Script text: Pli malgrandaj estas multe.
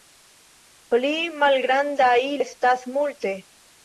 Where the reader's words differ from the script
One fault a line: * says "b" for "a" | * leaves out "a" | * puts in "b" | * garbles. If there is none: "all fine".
all fine